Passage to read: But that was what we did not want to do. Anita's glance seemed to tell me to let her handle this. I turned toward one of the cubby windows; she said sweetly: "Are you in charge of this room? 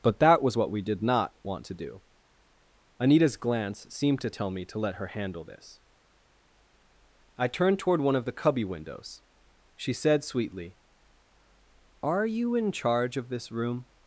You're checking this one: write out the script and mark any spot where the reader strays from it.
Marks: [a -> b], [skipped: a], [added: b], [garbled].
But that was what we did not want to do. Anita's glance seemed to tell me to let her handle this. I turned toward one of the cubby windows; she said sweetly: "Are you in charge of this room?